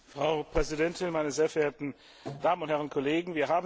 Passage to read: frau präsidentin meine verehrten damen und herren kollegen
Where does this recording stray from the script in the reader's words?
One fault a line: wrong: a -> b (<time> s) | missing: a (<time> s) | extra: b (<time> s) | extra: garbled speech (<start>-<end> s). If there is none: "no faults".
extra: sehr (1.3 s)